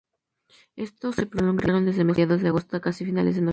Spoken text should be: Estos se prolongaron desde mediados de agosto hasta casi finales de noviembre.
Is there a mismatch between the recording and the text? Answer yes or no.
no